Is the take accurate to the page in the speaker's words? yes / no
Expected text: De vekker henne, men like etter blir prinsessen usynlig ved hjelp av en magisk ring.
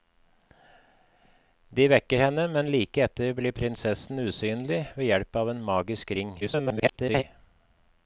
no